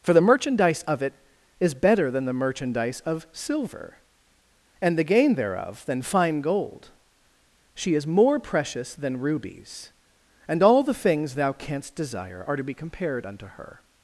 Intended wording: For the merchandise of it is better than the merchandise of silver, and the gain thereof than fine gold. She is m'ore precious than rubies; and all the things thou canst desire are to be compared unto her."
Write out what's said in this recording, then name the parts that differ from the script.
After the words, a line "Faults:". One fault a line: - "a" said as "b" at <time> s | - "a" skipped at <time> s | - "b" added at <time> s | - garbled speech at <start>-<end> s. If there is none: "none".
For the merchandise of it is better than the merchandise of silver, and the gain thereof than fine gold. She is m'ore precious than rubies; and all the things thou canst desire are to be compared unto her."
Faults:
none